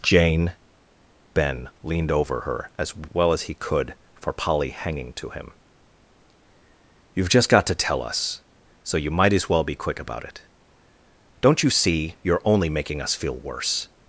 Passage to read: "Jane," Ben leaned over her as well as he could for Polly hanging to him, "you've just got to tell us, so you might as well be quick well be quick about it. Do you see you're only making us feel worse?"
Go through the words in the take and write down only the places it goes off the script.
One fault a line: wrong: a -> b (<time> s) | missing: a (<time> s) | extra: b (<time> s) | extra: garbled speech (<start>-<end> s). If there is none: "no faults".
missing: well be quick (10.0 s)
wrong: Do -> Don't (11.4 s)